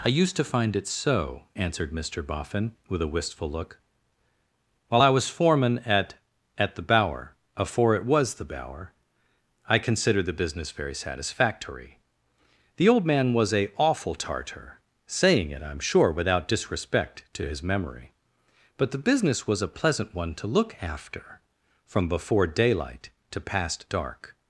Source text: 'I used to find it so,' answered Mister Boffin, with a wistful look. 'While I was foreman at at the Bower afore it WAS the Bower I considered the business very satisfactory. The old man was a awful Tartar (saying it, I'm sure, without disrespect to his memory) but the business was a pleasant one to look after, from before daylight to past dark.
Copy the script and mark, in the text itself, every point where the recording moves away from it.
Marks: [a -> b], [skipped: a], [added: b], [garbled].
'I used to find it so,' answered Mister Boffin, with a wistful look. 'While I was foreman at at the Bower afore it WAS the Bower I considered the business very satisfactory. The old man was a awful Tartar (saying it, I'm sure, without disrespect to his memory) but the business was a pleasant one to look after, from before daylight to past dark.